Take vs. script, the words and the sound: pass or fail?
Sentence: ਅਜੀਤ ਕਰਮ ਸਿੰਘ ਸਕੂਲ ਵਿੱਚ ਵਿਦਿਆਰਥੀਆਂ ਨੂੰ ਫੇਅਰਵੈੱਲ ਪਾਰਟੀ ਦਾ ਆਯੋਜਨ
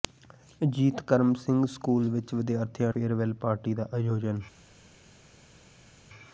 fail